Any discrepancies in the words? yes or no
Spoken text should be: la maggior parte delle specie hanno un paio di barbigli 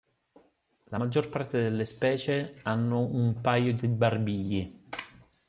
no